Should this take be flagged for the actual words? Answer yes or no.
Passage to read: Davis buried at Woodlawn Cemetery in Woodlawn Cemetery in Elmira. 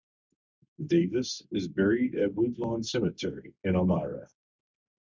yes